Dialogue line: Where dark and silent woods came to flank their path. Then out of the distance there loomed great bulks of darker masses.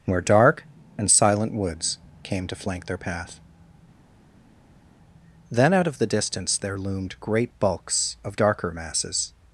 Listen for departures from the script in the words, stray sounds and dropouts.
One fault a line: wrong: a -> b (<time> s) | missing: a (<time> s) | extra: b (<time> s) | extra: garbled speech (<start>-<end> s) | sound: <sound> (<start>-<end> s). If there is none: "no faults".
no faults